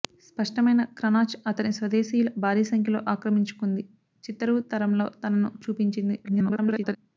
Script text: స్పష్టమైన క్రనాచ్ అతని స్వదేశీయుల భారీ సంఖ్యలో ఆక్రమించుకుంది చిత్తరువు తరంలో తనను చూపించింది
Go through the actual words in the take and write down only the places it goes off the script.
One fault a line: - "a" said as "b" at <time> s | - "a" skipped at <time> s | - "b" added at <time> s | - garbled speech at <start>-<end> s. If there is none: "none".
- garbled speech at 6.2-7.0 s